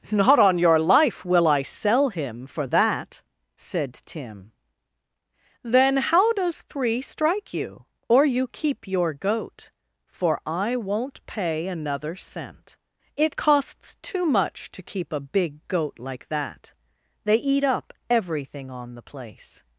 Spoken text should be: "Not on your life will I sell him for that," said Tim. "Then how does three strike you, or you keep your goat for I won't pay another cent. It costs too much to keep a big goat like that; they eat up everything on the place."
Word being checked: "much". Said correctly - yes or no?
yes